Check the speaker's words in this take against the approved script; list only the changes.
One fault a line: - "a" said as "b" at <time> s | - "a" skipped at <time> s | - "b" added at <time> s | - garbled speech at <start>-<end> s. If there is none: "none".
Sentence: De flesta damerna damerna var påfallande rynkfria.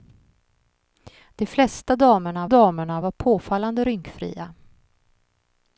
none